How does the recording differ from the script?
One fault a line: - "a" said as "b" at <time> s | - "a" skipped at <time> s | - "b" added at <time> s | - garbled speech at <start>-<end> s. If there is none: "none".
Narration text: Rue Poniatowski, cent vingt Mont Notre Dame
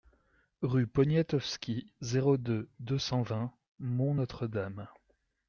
- "zéro deux deux" added at 2.0 s